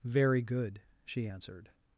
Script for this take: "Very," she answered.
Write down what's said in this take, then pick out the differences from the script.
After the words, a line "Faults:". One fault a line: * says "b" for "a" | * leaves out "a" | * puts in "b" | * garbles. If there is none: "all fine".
"Very good," she answered.
Faults:
* puts in "good"